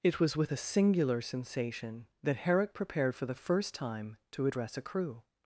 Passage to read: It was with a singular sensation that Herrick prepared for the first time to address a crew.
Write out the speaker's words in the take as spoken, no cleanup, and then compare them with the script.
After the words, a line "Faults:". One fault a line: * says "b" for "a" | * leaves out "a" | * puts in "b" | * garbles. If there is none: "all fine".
It was with a singular sensation that Herrick prepared for the first time to address a crew.
Faults:
all fine